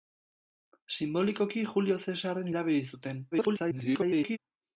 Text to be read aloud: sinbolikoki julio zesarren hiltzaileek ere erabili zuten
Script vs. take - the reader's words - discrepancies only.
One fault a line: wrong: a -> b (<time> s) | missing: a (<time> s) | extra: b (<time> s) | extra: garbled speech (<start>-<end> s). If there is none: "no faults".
missing: hiltzaileek ere (2.5 s)
extra: garbled speech (3.3-4.4 s)